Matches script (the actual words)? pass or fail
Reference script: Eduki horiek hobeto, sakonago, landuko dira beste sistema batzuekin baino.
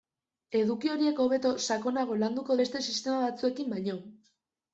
fail